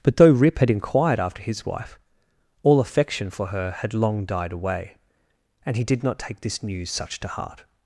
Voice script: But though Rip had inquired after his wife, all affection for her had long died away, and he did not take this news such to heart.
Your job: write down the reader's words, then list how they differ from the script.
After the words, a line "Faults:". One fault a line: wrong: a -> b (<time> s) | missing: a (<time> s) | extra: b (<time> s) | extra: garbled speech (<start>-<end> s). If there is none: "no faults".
But though Rip had inquired after his wife, all affection for her had long died away, and he did not take this news such to heart.
Faults:
no faults